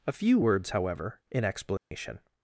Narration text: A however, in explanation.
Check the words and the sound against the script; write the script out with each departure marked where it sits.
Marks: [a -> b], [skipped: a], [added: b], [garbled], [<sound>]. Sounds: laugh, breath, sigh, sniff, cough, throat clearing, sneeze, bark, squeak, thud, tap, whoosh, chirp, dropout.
A [added: few words] however, in explanation. [dropout]